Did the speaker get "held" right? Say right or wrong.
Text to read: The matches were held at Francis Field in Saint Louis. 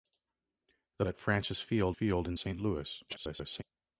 wrong